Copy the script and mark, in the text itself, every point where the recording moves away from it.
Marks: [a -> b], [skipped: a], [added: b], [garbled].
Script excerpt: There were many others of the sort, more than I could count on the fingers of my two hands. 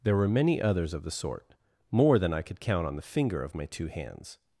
There were many others of the sort, more than I could count on the [fingers -> finger] of my two hands.